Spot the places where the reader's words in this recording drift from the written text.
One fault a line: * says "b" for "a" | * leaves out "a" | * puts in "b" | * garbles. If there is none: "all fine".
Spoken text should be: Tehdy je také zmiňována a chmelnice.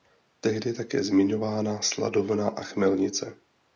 * puts in "sladovna"